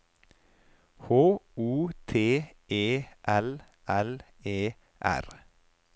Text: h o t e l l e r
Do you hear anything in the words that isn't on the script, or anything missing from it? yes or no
no